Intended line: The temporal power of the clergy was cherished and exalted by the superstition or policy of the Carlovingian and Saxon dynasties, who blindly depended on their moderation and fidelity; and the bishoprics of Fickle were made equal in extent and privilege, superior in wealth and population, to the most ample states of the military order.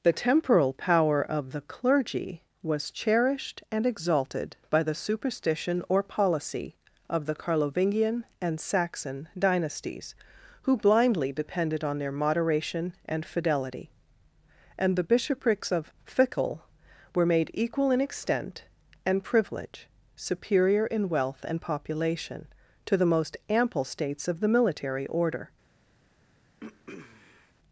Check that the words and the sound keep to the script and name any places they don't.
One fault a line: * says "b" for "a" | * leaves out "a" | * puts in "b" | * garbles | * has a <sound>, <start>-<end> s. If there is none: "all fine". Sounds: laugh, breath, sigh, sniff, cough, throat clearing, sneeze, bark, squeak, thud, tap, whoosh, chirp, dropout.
* has a throat clearing, 26.6-27.5 s